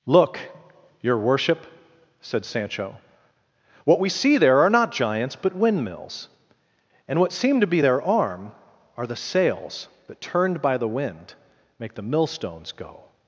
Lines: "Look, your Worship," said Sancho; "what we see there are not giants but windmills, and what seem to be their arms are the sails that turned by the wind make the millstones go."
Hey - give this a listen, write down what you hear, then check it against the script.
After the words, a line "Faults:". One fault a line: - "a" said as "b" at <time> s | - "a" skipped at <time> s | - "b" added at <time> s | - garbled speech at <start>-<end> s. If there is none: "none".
"Look, your Worship," said Sancho; "what we see there are not giants but windmills, and what seem to be their arm are the sails that turned by the wind make the millstones go."
Faults:
- "arms" said as "arm" at 8.0 s